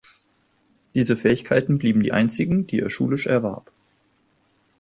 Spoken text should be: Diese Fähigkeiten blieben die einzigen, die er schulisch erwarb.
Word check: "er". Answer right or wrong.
right